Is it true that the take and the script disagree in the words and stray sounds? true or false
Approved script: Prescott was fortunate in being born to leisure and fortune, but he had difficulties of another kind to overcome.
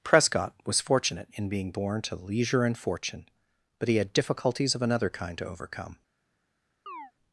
true